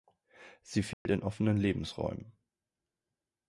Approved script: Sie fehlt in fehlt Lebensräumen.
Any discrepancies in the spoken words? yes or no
yes